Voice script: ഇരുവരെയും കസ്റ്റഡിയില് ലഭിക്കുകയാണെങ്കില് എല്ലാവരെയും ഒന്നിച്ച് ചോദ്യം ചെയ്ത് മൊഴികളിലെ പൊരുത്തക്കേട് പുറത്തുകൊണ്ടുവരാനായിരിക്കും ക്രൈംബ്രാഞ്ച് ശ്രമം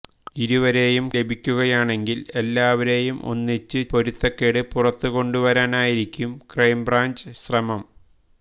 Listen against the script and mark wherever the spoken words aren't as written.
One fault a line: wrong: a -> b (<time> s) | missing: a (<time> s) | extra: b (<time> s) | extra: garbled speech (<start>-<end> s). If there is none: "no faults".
missing: കസ്റ്റഡിയില് (1.1 s)
missing: ചോദ്യം ചെയ്ത് മൊഴികളിലെ (3.8 s)